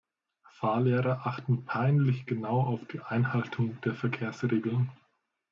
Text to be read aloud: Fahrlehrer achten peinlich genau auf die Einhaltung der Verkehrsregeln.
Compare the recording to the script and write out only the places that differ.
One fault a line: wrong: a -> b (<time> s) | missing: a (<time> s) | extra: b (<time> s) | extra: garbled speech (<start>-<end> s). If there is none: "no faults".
no faults